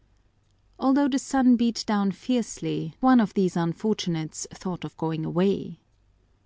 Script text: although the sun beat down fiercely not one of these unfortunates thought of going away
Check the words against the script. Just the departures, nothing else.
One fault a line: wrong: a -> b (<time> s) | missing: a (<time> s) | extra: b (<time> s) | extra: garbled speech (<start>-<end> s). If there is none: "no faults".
missing: not (3.0 s)